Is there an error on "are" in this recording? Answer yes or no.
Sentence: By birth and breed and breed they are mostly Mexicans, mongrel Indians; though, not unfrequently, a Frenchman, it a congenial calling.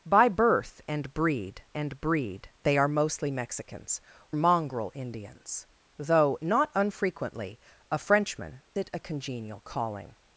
no